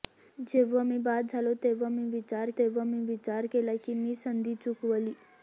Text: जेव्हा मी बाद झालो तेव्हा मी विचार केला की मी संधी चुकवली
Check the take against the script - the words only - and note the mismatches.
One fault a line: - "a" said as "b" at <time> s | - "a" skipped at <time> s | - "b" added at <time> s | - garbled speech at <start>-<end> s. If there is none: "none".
- "तेव्हा मी विचार" added at 2.6 s